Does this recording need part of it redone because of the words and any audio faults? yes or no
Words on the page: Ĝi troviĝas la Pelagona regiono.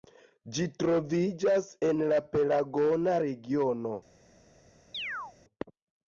yes